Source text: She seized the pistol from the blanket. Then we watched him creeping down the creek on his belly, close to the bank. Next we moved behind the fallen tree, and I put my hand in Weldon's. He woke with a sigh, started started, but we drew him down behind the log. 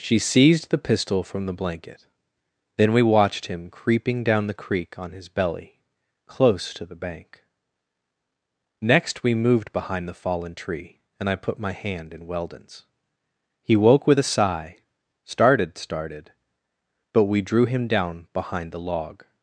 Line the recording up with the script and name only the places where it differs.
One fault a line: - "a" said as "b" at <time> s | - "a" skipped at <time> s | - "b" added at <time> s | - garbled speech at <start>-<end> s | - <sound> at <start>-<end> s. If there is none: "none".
none